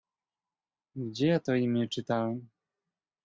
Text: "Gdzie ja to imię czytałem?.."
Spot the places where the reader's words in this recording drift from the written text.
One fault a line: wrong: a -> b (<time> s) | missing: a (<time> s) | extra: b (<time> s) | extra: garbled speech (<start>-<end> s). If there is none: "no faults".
no faults